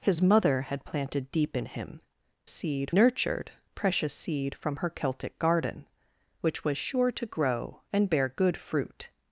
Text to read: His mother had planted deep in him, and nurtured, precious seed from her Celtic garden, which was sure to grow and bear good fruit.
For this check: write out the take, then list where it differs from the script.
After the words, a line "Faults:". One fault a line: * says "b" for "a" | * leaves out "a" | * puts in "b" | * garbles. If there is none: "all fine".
His mother had planted deep in him, seed nurtured, precious seed from her Celtic garden, which was sure to grow and bear good fruit.
Faults:
* says "seed" for "and"